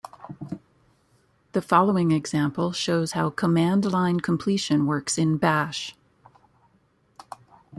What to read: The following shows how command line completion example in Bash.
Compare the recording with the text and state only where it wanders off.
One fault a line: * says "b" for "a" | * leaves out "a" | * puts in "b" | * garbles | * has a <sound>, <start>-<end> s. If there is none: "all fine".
* puts in "example"
* says "works" for "example"